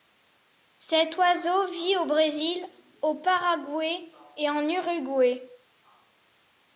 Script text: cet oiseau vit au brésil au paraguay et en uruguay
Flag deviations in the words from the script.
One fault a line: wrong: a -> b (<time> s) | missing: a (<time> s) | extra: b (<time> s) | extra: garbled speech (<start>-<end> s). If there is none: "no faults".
no faults